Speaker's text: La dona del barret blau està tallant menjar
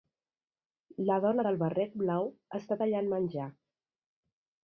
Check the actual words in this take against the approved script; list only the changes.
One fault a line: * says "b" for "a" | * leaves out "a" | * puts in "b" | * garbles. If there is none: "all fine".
all fine